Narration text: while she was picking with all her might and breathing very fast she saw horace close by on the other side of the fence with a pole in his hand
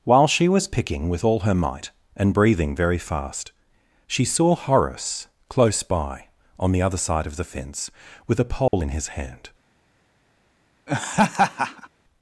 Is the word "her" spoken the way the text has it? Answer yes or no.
yes